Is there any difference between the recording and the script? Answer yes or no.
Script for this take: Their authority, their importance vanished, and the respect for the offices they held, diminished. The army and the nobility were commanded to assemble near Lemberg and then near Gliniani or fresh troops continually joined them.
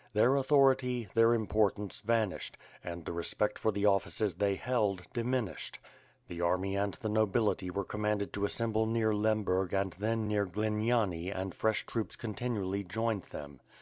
yes